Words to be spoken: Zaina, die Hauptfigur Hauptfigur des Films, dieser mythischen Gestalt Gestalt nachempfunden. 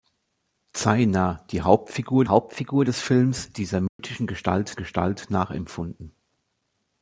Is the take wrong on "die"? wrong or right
right